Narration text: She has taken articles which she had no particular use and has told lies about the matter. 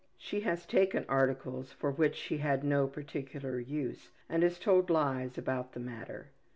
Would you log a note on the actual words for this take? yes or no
yes